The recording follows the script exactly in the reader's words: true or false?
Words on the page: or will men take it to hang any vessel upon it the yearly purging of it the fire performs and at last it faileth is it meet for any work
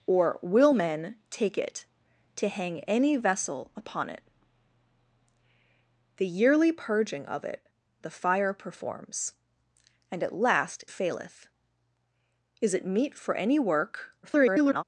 false